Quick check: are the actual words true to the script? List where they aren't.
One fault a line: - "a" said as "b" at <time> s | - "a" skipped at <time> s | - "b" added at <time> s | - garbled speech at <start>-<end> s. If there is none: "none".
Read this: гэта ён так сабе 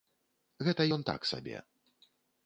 none